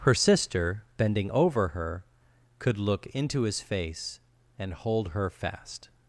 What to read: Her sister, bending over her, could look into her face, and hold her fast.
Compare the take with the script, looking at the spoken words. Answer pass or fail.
fail